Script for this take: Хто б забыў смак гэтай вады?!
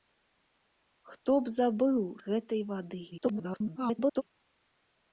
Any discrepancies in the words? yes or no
yes